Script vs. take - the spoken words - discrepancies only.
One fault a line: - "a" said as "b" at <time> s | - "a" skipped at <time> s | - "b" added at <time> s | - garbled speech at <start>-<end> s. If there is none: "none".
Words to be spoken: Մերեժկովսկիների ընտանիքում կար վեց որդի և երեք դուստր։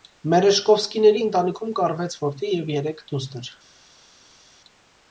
none